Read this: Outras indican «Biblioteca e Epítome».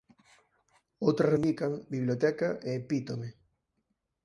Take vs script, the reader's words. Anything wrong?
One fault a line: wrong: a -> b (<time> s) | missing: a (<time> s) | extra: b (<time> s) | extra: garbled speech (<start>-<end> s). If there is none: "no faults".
no faults